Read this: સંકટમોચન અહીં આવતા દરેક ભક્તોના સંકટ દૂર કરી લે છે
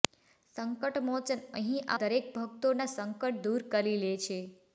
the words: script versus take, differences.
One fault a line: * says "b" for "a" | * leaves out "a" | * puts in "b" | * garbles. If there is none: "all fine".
* leaves out "આવતા"